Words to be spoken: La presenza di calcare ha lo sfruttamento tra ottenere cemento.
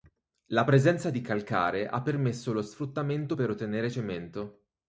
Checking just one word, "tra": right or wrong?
wrong